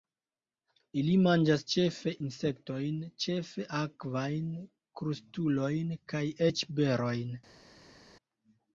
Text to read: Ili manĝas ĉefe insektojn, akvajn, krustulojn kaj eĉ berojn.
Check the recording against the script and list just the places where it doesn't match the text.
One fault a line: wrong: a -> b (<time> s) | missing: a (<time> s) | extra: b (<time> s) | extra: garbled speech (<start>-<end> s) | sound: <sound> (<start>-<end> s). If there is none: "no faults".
extra: ĉefe (3.3 s)